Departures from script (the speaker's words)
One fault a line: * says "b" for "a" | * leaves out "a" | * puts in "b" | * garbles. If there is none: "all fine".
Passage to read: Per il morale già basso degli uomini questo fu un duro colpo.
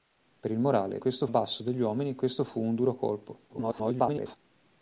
* says "questo" for "già"
* garbles